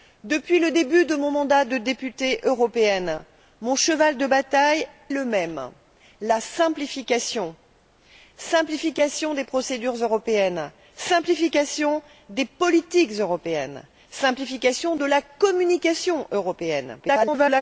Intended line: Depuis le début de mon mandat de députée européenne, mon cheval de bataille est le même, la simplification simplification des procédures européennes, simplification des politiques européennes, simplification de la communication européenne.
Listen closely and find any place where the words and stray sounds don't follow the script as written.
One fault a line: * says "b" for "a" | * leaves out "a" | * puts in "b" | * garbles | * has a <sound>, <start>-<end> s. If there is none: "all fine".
* leaves out "est"
* garbles